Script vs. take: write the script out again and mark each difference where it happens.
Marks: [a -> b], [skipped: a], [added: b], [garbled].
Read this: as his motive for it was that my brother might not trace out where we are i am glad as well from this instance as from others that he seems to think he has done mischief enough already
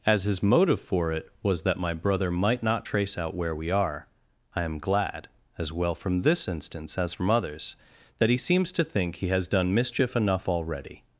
as his motive for it was that my brother might not trace out where we are i am glad as well from this instance as from others that he seems to think he has done mischief enough already